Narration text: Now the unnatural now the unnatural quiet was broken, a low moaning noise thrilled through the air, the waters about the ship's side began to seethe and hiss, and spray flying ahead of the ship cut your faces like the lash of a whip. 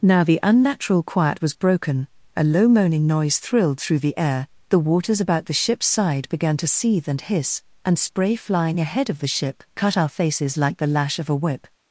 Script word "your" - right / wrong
wrong